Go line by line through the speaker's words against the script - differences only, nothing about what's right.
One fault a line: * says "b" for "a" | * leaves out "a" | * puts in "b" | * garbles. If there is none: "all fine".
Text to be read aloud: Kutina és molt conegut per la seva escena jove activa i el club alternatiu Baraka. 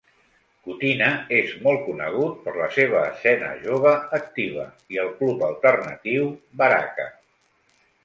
all fine